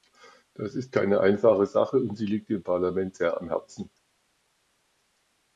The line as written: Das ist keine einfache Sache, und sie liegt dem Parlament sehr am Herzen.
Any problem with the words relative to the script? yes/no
no